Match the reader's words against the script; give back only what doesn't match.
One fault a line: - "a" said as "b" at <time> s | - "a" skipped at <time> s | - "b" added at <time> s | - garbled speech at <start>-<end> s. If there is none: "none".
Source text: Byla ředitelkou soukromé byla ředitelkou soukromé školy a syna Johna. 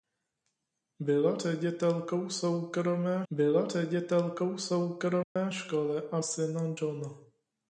none